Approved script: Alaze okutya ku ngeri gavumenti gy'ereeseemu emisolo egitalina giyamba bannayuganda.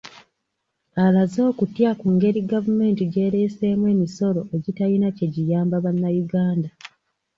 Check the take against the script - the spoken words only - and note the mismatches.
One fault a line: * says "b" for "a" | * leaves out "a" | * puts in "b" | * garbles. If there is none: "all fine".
* puts in "kye"